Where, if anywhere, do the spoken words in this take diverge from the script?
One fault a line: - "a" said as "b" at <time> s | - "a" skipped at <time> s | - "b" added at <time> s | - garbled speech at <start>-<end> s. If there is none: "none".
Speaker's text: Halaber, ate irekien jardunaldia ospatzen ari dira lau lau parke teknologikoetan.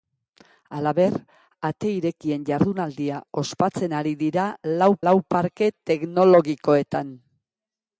none